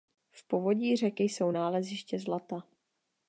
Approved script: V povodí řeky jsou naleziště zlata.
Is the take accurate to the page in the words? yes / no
yes